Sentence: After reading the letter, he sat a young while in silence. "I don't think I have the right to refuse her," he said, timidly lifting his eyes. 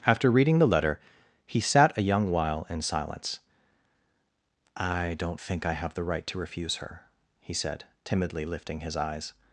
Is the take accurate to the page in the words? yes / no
yes